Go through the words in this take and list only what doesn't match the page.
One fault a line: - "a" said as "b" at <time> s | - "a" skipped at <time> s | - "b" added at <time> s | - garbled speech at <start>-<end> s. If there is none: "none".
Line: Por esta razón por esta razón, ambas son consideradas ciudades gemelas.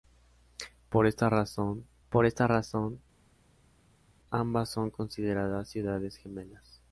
none